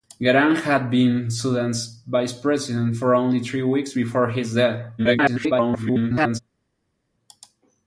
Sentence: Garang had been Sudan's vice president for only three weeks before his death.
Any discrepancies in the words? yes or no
yes